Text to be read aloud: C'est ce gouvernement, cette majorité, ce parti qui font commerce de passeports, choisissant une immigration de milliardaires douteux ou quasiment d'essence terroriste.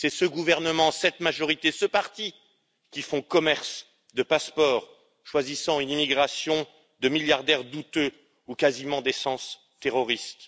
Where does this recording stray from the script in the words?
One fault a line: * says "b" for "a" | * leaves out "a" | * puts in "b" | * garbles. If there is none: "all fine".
all fine